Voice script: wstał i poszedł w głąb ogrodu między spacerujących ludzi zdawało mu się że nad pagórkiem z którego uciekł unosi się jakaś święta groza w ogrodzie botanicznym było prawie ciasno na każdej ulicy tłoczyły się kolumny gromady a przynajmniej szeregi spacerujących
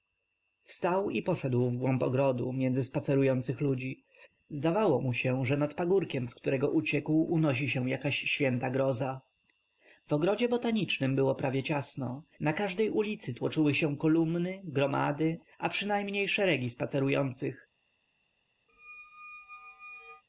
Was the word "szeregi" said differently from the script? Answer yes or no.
no